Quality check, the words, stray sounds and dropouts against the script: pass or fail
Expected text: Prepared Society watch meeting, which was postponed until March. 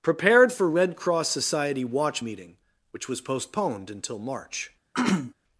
fail